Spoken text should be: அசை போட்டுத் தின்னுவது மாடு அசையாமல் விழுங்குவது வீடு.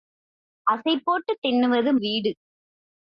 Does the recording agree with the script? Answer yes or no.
no